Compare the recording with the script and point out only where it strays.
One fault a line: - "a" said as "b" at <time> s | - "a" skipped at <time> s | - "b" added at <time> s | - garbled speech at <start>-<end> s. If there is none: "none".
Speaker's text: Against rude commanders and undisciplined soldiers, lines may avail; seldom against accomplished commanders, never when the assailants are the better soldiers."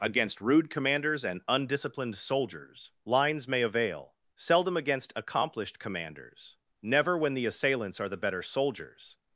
none